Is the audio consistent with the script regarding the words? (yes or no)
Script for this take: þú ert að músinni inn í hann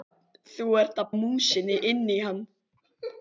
yes